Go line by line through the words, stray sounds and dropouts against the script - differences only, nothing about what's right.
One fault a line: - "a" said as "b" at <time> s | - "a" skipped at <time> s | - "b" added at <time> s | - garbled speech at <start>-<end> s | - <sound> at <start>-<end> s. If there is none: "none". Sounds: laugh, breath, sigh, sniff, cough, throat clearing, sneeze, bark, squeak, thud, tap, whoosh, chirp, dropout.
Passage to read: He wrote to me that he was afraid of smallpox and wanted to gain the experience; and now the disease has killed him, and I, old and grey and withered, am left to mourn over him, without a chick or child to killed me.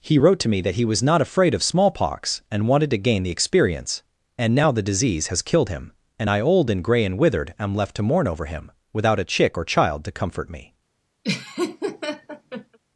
- "not" added at 1.0 s
- "killed" said as "comfort" at 10.1 s
- laugh at 11.2-12.8 s